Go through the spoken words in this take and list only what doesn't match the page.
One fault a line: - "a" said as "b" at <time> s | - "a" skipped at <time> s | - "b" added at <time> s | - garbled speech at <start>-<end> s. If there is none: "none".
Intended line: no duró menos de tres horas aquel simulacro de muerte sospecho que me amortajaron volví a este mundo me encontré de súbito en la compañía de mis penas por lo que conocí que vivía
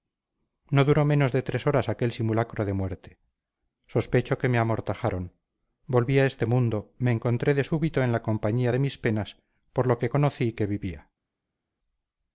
none